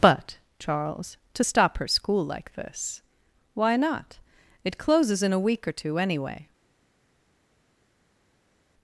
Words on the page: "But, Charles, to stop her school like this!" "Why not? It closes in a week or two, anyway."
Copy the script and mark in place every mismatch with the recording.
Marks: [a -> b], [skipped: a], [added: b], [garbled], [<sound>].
"But, Charles, to stop her school like this!" "Why not? It closes in a week or two, anyway."